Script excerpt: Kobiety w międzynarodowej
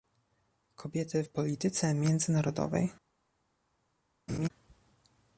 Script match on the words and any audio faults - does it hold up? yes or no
no